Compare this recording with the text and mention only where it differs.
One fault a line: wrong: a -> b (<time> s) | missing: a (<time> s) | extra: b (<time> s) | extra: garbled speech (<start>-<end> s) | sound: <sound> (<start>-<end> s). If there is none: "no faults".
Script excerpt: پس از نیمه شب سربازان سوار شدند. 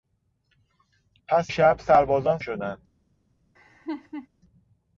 missing: از نیمه (1.5 s)
missing: سوار (2.4 s)
sound: laugh (3.6-4.3 s)